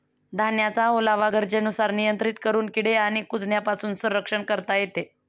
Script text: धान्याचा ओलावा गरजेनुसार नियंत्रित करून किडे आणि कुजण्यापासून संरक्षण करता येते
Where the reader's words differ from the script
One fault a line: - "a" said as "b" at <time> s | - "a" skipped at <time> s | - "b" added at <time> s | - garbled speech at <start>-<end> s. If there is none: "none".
none